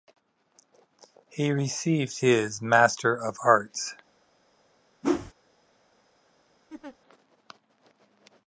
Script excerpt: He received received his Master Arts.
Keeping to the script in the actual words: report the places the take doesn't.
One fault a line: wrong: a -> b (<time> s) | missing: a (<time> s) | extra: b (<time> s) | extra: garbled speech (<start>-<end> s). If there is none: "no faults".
missing: received (2.2 s)
extra: of (3.1 s)